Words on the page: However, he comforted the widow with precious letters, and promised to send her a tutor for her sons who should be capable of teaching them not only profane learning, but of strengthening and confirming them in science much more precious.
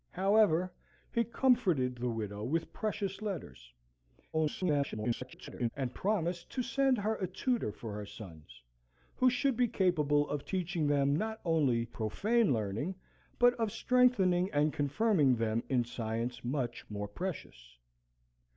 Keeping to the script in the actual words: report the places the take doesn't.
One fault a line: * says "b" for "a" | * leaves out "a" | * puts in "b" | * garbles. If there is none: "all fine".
* garbles